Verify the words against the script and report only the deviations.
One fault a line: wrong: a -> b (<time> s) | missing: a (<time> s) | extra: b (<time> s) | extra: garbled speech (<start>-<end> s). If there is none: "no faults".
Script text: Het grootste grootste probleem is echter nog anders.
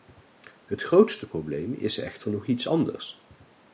missing: grootste (1.3 s)
extra: iets (2.5 s)